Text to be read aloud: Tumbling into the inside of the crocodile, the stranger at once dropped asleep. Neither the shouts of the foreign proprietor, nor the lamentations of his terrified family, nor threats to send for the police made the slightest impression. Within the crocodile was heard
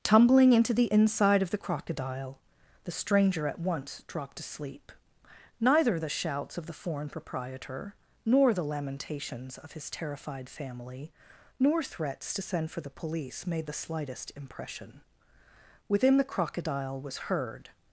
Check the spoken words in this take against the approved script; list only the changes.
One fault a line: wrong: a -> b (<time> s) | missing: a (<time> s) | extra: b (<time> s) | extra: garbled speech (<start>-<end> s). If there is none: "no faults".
no faults